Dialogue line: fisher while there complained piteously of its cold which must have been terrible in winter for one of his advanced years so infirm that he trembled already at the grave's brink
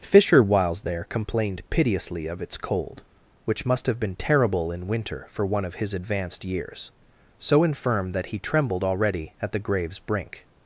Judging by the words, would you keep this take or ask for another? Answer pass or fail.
fail